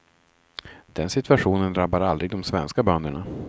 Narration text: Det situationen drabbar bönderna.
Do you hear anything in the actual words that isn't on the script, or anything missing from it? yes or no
yes